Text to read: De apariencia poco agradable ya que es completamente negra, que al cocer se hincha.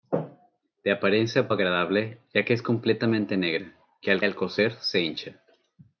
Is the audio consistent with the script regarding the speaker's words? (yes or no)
no